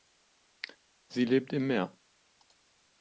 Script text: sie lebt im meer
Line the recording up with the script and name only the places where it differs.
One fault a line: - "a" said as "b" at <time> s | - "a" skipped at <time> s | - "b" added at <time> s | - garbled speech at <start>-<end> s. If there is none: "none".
none